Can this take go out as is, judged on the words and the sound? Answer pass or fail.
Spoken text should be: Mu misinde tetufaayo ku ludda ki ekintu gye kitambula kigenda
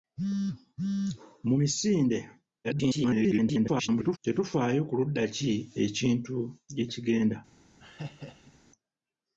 fail